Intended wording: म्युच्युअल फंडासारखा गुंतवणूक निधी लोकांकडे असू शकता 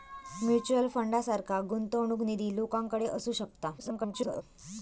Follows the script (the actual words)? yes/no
no